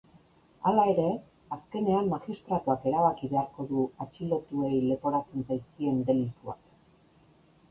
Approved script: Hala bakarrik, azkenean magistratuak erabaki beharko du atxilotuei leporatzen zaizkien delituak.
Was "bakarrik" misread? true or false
true